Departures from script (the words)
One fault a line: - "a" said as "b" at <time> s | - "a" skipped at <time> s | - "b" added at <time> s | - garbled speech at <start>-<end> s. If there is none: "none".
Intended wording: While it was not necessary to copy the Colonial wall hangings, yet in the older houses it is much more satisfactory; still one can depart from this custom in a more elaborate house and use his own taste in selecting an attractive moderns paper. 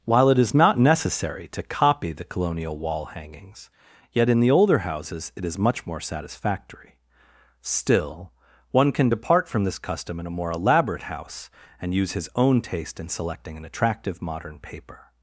- "was" said as "is" at 0.4 s
- "moderns" said as "modern" at 14.2 s